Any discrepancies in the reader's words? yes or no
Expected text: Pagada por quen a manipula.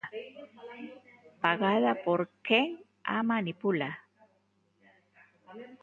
no